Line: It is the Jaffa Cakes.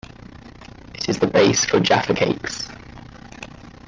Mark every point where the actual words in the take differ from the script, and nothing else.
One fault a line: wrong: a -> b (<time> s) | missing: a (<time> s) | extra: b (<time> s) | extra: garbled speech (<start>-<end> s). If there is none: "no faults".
extra: base for (1.3 s)